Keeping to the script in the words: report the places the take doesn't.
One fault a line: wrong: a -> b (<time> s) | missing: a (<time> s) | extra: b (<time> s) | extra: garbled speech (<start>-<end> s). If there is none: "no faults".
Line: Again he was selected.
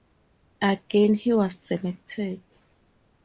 no faults